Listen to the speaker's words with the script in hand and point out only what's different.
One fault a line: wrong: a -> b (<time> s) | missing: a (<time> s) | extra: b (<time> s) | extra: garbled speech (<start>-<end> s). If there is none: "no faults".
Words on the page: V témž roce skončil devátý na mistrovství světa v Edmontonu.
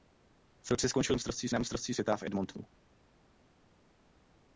missing: témž (0.7 s)
wrong: devátý -> mistrovství (1.1 s)